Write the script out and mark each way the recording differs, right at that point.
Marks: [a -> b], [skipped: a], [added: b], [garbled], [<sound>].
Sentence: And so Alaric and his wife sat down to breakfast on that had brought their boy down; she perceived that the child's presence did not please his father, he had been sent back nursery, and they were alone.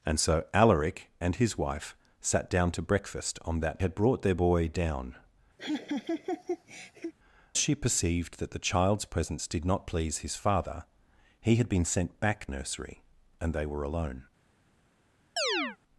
And so Alaric and his wife sat down to breakfast on that had brought their boy down; [laugh] she perceived that the child's presence did not please his father, he had been sent back nursery, and they were alone. [chirp]